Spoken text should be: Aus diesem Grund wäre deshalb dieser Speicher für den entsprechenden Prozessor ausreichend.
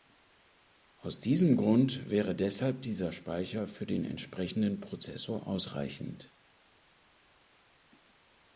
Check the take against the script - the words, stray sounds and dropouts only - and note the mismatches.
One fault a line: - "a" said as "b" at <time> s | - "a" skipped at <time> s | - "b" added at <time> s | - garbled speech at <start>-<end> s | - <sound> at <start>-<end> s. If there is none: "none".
none